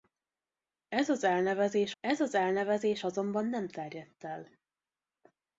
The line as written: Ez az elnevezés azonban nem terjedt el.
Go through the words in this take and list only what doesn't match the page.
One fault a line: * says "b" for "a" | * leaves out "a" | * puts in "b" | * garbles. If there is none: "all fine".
* puts in "ez az elnevezés"